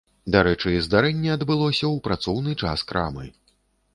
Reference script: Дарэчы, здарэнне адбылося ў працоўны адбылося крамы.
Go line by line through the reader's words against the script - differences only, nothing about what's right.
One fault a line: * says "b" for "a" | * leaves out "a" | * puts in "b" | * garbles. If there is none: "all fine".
* says "час" for "адбылося"